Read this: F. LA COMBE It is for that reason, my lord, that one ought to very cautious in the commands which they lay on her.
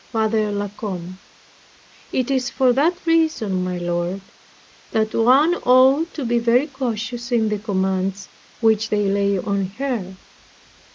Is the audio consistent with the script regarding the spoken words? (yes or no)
no